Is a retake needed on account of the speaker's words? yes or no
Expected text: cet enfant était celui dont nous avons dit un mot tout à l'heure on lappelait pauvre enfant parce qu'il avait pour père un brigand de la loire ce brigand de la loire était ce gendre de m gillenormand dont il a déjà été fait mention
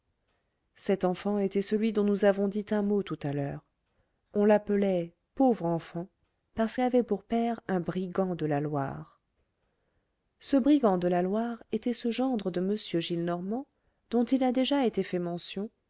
yes